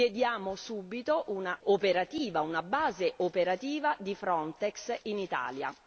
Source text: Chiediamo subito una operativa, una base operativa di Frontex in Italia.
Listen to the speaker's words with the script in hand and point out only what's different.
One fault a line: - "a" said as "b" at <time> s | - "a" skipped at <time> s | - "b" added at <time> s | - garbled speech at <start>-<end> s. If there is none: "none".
none